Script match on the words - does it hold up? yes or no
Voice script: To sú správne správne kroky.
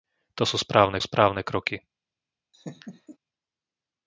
yes